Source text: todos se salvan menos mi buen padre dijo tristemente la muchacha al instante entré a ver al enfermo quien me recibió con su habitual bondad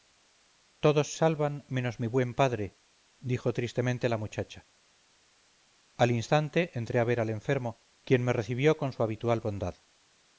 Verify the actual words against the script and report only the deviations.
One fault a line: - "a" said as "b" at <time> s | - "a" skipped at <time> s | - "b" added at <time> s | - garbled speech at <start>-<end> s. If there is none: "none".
- "se" skipped at 1.1 s